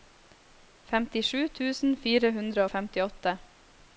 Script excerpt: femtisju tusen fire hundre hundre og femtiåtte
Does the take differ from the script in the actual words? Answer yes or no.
yes